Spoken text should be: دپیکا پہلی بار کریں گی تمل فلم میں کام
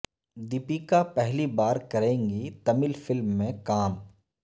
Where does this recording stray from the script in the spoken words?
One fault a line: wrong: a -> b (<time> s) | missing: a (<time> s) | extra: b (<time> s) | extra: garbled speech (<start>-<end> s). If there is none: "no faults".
no faults